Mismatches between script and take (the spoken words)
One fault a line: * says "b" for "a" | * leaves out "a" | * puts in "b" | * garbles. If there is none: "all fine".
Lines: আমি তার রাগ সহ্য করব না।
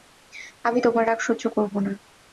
* says "তোমার" for "তার"